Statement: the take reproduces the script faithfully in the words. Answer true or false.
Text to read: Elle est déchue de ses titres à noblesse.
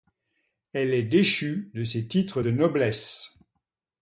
false